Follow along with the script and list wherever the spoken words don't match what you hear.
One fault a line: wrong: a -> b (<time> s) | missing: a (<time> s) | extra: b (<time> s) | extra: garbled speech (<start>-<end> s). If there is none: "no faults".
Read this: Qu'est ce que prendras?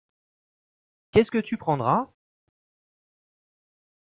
extra: tu (1.4 s)